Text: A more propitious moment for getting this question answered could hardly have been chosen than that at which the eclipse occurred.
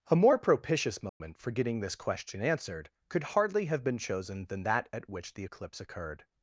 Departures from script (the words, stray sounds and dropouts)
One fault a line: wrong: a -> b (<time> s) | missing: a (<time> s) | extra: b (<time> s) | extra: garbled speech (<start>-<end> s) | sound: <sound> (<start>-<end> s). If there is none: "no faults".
sound: dropout (1.1-1.2 s)